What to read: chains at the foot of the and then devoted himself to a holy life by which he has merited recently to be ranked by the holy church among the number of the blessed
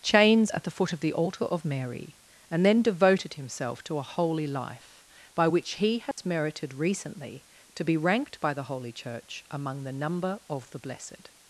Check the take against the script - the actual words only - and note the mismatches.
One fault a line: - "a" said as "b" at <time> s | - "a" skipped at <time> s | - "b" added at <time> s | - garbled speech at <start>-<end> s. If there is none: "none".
- "altar of mary" added at 1.1 s